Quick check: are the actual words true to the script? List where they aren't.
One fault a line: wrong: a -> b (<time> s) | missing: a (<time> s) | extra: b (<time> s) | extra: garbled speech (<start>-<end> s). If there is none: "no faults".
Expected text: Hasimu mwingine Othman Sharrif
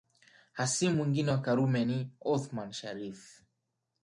extra: wa Karume ni (1.3 s)